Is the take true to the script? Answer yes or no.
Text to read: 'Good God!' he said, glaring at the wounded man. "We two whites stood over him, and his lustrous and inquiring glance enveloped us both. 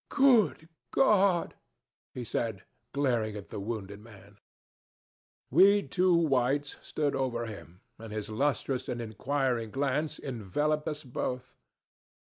yes